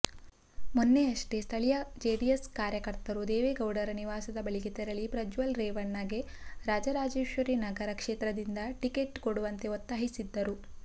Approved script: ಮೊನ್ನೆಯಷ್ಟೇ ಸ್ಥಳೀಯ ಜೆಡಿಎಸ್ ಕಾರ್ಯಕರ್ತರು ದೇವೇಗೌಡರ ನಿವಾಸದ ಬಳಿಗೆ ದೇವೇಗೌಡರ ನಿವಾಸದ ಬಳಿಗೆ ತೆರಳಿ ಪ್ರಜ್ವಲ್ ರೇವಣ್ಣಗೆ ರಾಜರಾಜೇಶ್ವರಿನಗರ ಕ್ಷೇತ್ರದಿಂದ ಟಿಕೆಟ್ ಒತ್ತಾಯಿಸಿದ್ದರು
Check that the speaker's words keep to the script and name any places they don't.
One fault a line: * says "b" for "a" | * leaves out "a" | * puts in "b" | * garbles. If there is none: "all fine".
* leaves out "ದೇವೇಗೌಡರ ನಿವಾಸದ ಬಳಿಗೆ"
* puts in "ಕೊಡುವಂತೆ"